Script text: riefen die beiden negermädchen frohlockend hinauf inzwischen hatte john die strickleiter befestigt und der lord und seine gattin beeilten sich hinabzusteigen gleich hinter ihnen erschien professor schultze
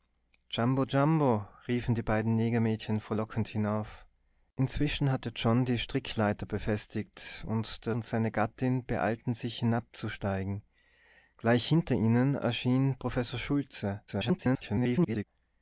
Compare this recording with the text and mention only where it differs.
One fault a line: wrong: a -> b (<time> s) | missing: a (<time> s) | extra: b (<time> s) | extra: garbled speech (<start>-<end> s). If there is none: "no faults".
missing: lord (7.9 s)
extra: garbled speech (14.1-15.2 s)